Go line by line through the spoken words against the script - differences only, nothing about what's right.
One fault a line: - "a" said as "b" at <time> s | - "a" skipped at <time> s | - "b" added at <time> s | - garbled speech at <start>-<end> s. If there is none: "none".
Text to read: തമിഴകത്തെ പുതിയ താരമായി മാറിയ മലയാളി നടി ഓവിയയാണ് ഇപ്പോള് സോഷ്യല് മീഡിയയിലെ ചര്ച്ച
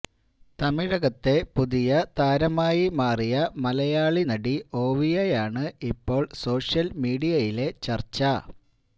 none